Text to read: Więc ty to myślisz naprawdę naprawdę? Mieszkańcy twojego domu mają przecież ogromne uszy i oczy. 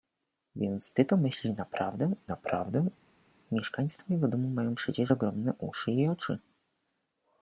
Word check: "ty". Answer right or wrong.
right